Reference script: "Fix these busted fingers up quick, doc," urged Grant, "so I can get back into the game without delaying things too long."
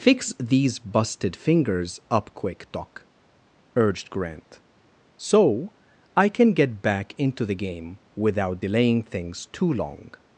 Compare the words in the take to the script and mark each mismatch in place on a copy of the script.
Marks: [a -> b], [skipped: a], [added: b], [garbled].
"Fix these busted fingers up quick, doc," urged Grant, "so I can get back into the game without delaying things too long."